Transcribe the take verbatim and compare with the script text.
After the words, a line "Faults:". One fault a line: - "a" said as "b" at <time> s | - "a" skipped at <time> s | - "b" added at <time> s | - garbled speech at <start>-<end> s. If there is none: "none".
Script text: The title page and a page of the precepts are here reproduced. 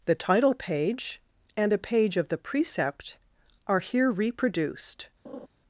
The title page and a page of the precept are here reproduced.
Faults:
- "precepts" said as "precept" at 2.4 s